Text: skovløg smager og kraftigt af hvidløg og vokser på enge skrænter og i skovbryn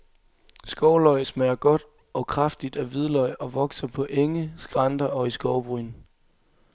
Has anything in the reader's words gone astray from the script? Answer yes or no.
yes